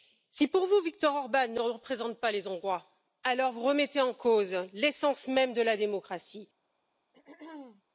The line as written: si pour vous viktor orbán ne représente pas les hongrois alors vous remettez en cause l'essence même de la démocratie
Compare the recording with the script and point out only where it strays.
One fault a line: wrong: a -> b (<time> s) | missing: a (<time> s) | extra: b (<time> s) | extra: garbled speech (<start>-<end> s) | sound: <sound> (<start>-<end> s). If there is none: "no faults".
sound: throat clearing (7.1-7.8 s)